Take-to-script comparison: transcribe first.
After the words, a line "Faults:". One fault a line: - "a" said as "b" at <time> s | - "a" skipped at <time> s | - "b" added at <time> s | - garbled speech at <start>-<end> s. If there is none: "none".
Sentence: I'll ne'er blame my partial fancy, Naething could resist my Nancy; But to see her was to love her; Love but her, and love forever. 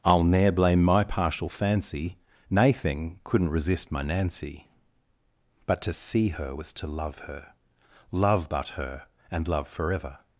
I'll ne'er blame my partial fancy, Naething couldn't resist my Nancy; But to see her was to love her; Love but her, and love forever.
Faults:
- "could" said as "couldn't" at 3.2 s